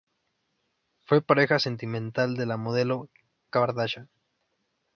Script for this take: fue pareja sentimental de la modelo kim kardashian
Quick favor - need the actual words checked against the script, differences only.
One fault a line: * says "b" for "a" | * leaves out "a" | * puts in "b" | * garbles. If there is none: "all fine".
* leaves out "kim"